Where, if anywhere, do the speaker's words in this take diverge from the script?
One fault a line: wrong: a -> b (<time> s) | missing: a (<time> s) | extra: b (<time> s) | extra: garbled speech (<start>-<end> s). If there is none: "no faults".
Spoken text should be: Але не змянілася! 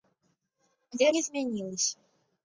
no faults